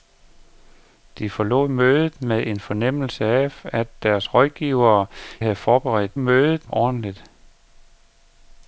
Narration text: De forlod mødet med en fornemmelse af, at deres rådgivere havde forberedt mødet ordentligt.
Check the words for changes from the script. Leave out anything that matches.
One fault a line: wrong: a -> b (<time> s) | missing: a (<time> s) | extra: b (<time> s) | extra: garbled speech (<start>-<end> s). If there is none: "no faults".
no faults